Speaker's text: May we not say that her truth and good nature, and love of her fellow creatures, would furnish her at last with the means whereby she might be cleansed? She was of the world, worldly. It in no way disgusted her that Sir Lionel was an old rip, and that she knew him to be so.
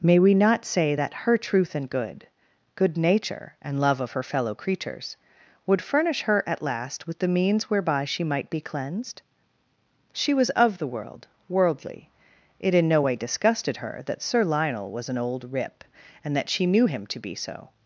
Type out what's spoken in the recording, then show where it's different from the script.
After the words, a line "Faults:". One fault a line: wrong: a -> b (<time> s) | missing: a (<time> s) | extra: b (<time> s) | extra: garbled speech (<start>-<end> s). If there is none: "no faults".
May we not say that her truth and good good nature, and love of her fellow creatures, would furnish her at last with the means whereby she might be cleansed? She was of the world, worldly. It in no way disgusted her that Sir Lionel was an old rip, and that she knew him to be so.
Faults:
extra: good (2.8 s)